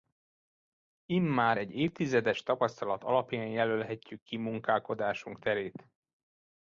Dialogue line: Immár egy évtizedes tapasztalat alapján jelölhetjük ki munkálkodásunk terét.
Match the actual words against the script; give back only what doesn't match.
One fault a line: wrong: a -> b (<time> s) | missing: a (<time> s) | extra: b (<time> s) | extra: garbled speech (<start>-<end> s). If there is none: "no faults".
no faults